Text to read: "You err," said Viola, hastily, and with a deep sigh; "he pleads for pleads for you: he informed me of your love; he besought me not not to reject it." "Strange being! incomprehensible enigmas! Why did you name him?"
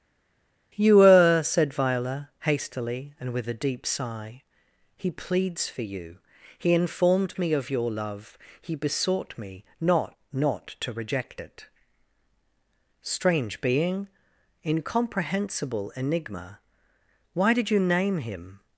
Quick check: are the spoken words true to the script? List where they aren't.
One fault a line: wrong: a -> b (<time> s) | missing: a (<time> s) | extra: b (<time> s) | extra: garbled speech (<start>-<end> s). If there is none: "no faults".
missing: pleads for (5.8 s)
wrong: enigmas -> enigma (16.0 s)